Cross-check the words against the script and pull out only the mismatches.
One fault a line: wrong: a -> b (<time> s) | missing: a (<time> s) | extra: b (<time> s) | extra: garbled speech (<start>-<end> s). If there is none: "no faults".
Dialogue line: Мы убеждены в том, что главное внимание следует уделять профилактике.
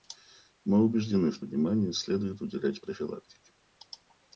missing: том что главное (1.4 s)